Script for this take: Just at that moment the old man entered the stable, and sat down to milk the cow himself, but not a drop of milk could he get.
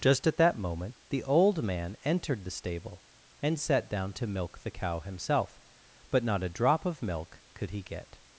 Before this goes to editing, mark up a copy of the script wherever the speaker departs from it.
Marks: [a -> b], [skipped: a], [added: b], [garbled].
Just at that moment the old man entered the stable, and sat down to milk the cow himself, but not a drop of milk could he get.